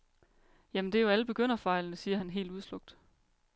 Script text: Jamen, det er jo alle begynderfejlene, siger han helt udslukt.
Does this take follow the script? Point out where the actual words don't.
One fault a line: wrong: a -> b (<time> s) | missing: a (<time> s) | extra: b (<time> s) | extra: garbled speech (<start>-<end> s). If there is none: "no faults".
no faults